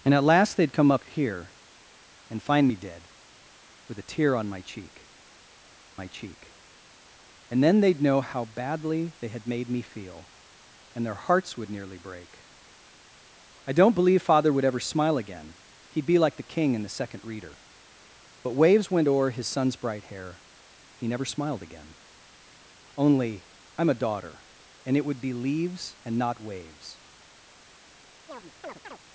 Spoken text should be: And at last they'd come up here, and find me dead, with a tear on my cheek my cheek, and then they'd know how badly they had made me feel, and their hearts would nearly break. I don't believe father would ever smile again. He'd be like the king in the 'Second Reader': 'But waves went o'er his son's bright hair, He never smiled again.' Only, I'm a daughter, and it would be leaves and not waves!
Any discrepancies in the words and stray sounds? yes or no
yes